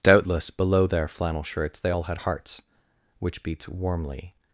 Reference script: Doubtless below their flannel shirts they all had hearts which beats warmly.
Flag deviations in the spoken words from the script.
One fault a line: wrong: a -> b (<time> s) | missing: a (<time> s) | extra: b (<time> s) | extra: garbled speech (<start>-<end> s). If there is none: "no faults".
no faults